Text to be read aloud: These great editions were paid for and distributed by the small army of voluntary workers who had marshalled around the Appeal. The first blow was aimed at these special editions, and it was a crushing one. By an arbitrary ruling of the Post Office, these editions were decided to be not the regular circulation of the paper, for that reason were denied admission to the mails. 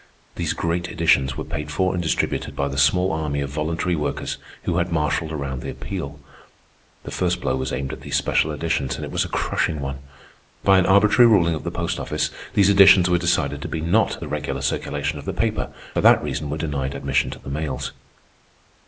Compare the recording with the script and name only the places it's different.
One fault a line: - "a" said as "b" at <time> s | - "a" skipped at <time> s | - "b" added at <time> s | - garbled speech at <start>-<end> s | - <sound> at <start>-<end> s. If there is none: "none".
none